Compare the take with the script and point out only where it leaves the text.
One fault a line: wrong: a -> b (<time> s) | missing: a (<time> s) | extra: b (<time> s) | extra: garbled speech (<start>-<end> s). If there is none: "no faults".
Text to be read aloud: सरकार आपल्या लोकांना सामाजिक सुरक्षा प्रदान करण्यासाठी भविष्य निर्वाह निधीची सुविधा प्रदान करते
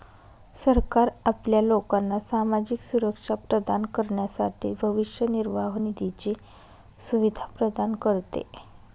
no faults